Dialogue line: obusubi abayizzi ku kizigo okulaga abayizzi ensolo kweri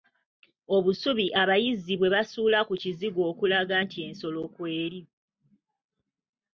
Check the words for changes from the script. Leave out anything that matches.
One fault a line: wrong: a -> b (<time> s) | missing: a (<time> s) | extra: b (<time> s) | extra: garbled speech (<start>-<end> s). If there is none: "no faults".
extra: bwe basuula (2.0 s)
wrong: abayizzi -> nti (3.8 s)